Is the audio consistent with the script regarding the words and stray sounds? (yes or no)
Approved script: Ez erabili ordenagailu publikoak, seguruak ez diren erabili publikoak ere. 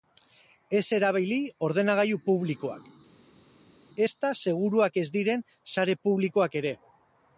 no